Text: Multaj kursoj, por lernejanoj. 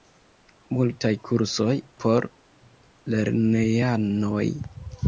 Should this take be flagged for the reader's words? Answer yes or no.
no